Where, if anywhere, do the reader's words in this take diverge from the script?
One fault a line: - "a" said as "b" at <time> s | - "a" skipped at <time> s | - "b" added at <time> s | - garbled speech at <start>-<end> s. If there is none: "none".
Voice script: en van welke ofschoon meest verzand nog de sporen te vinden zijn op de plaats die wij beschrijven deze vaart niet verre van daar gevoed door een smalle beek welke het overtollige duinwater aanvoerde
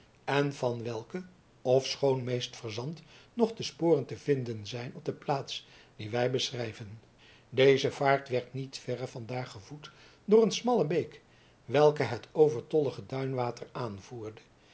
- "werd" added at 8.3 s